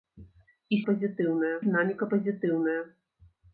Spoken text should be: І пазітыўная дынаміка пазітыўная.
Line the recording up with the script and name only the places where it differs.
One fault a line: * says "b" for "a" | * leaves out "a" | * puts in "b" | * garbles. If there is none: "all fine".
all fine